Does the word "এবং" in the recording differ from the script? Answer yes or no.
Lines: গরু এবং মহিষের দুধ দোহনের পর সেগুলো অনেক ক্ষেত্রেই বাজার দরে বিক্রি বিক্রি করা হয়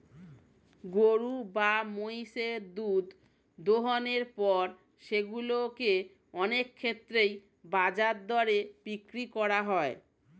yes